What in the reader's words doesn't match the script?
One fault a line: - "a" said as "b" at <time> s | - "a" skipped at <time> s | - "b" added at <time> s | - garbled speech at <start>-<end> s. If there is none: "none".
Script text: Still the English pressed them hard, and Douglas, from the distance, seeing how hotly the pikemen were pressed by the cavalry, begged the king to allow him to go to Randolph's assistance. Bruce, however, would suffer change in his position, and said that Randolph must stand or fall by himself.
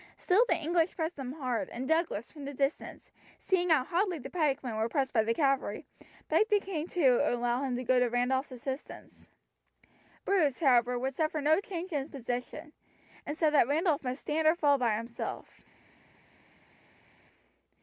- "no" added at 11.4 s